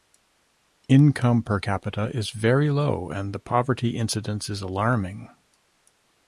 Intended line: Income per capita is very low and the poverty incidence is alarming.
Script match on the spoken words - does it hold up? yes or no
yes